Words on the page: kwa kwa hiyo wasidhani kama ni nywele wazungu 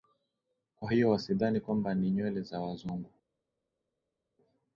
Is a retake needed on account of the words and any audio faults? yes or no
yes